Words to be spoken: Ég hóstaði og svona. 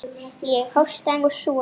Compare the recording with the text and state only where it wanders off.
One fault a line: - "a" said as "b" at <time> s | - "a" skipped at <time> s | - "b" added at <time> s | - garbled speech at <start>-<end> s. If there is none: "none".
none